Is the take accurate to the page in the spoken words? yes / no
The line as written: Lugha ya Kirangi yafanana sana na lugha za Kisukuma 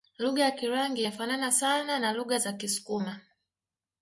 yes